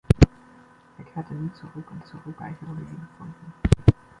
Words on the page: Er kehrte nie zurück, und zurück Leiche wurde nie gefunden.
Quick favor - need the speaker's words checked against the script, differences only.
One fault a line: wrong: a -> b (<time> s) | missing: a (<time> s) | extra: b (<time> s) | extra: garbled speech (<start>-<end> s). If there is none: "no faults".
no faults